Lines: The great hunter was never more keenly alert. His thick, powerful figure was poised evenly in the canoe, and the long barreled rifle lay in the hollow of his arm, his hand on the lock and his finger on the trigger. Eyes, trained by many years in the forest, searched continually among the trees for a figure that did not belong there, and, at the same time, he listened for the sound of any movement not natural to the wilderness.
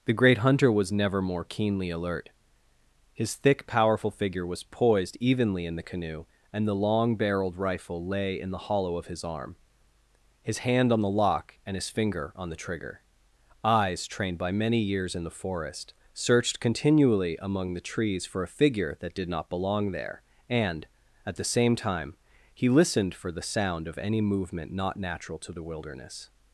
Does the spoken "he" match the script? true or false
true